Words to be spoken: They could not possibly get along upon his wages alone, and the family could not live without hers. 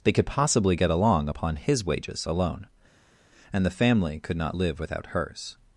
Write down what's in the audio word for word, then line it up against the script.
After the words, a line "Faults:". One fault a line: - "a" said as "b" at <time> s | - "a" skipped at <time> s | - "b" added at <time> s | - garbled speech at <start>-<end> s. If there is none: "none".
They could possibly get along upon his wages alone, and the family could not live without hers.
Faults:
- "not" skipped at 0.2 s